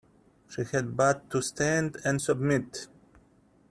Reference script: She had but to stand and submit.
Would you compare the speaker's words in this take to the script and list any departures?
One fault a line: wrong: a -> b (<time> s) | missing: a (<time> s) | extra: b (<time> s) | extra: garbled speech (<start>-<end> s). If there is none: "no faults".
no faults